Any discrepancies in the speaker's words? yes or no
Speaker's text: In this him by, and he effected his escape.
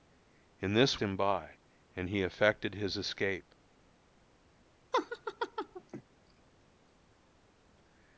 no